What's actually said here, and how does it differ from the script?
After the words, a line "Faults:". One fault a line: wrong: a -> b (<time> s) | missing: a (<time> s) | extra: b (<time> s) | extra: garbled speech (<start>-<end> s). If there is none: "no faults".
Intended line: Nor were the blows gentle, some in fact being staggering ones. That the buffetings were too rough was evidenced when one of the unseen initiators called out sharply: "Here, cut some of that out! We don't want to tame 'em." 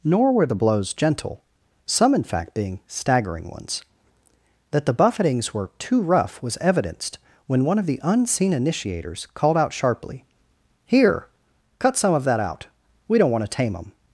Nor were the blows gentle, some in fact being staggering ones. That the buffetings were too rough was evidenced when one of the unseen initiators called out sharply: "Here, cut some of that out! We don't want to tame 'em."
Faults:
no faults